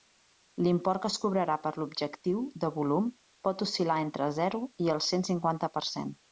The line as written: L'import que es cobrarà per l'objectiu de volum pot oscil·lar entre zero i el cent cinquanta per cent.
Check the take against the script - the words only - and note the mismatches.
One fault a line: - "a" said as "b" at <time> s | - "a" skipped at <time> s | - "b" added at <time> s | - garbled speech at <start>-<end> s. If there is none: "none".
none